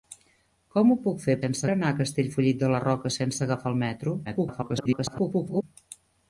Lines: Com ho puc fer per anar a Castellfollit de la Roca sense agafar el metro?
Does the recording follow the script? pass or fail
fail